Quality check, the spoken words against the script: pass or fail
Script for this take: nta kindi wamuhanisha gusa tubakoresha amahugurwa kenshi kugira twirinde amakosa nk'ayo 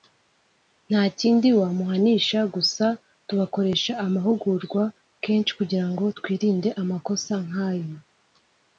fail